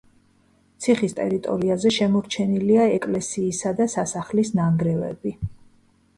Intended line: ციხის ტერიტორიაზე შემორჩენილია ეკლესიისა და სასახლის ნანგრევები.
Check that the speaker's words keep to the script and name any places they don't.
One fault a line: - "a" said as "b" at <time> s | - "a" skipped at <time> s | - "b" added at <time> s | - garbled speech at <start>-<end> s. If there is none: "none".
none